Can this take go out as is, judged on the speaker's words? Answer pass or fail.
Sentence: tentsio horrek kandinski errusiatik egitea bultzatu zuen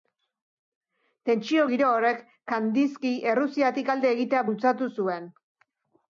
fail